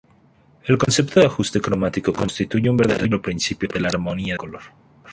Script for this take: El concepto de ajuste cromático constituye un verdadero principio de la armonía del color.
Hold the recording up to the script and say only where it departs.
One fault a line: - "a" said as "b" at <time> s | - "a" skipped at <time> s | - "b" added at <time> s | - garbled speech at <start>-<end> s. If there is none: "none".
- "del" skipped at 4.3 s